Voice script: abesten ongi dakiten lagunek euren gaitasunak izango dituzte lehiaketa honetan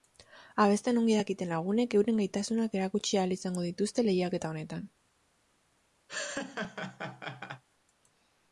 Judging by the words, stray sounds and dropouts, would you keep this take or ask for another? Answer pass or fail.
fail